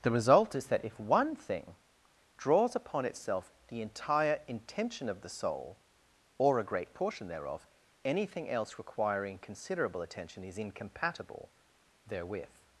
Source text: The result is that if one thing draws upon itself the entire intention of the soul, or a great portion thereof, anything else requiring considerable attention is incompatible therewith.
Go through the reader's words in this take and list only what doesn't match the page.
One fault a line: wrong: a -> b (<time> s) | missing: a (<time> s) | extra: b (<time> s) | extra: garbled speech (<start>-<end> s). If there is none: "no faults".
no faults